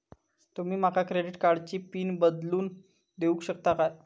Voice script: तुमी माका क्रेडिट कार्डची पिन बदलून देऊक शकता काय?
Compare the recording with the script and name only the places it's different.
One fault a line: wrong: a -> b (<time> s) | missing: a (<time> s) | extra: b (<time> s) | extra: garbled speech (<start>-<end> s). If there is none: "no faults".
no faults